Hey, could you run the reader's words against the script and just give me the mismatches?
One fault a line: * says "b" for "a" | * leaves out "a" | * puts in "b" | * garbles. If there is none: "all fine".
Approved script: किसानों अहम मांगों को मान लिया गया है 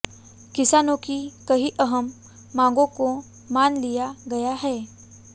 * puts in "की कई"